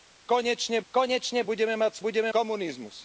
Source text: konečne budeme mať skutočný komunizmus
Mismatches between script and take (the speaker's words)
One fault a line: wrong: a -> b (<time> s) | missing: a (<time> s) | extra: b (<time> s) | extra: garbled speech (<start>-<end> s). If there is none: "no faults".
extra: konečne (0.9 s)
wrong: skutočný -> budeme (2.0 s)